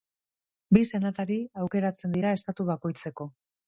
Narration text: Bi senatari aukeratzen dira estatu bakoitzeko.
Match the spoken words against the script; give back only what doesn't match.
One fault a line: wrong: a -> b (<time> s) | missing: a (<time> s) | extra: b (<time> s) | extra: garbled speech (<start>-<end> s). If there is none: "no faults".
no faults